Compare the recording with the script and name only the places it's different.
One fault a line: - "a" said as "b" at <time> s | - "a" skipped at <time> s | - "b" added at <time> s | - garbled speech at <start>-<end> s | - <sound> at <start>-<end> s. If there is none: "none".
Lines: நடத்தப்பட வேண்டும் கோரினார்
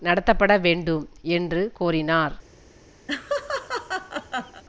- "என்று" added at 1.2 s
- laugh at 3.1-4.6 s